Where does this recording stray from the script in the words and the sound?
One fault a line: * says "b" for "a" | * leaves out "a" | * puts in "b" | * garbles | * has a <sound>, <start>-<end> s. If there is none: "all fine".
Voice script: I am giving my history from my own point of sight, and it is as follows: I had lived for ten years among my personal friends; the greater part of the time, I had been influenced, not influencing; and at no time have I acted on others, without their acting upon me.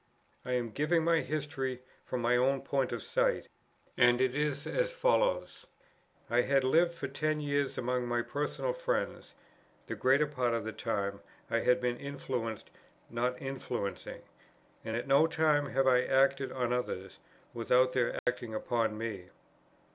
* has a dropout, 18.2-18.3 s